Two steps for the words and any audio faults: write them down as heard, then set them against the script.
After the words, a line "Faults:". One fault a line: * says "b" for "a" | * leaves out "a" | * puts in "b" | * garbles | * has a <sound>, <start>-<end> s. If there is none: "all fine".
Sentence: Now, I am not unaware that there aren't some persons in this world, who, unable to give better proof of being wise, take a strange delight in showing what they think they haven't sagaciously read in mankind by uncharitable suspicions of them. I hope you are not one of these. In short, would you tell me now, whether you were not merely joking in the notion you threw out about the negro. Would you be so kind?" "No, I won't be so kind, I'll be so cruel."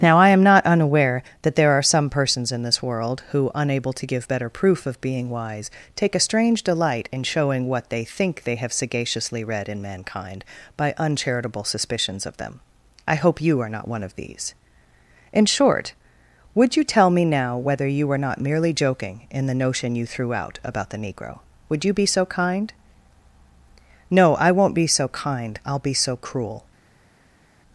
Now, I am not unaware that there are some persons in this world, who, unable to give better proof of being wise, take a strange delight in showing what they think they have sagaciously read in mankind by uncharitable suspicions of them. I hope you are not one of these. In short, would you tell me now, whether you were not merely joking in the notion you threw out about the negro. Would you be so kind?" "No, I won't be so kind, I'll be so cruel."
Faults:
* says "are" for "aren't"
* says "have" for "haven't"